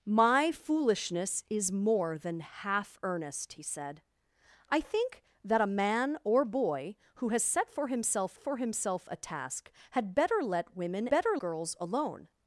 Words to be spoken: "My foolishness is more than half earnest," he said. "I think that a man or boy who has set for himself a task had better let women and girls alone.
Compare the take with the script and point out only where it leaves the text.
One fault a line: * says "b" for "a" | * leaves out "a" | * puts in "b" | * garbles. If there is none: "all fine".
* puts in "for himself"
* says "better" for "and"